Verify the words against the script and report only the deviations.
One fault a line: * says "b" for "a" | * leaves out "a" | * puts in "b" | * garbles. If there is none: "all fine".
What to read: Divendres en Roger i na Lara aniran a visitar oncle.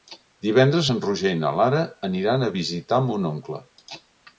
* puts in "mon"